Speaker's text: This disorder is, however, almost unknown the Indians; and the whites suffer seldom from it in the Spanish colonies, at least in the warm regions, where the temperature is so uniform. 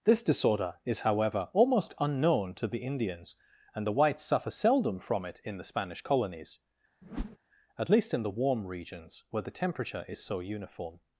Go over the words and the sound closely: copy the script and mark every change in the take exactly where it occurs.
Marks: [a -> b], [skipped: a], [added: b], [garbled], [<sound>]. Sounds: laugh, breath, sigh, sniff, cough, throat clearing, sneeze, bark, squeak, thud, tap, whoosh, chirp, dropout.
This disorder is, however, almost unknown [added: to] the Indians; and the whites suffer seldom from it in the Spanish colonies, [whoosh] at least in the warm regions, where the temperature is so uniform.